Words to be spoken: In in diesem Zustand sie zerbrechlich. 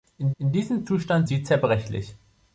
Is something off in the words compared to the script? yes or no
no